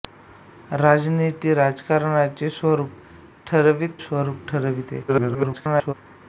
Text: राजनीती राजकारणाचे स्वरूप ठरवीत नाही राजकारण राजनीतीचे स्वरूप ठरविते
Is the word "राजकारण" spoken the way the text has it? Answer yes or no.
no